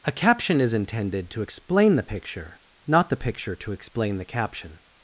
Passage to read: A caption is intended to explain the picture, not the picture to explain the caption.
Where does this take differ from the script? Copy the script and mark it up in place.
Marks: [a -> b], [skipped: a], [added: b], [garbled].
A caption is intended to explain the picture, not the picture to explain the caption.